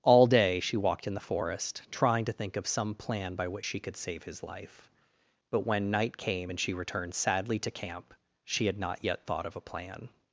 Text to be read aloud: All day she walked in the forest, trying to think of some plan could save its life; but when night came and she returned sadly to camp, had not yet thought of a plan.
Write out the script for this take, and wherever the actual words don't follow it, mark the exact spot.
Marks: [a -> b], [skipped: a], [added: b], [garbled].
All day she walked in the forest, trying to think of some plan [added: by which she] could save [its -> his] life; but when night came and she returned sadly to camp, [added: she] had not yet thought of a plan.